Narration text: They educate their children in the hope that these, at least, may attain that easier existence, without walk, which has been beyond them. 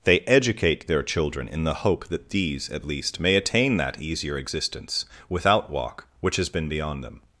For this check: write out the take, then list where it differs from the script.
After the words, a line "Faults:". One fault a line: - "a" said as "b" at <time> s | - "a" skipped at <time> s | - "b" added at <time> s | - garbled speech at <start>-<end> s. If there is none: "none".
They educate their children in the hope that these, at least, may attain that easier existence, without walk, which has been beyond them.
Faults:
none